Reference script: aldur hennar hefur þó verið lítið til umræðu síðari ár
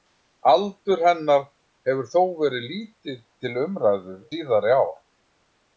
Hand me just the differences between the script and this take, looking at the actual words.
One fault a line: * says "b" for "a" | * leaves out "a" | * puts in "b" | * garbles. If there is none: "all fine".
all fine